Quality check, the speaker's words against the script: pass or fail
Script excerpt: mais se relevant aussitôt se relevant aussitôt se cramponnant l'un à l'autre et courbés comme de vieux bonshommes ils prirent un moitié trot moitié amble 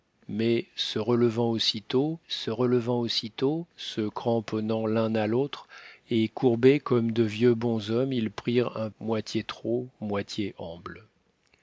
pass